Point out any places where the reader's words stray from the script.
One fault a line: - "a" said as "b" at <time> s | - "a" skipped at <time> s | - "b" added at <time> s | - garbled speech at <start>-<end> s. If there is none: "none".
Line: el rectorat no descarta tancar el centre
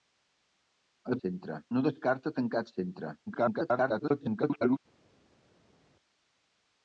- "rectorat" said as "centre" at 1.2 s
- garbled speech at 3.3-4.8 s